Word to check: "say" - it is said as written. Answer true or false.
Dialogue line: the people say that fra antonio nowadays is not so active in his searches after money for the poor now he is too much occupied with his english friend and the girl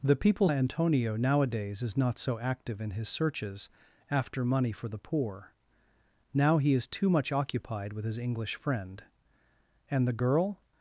false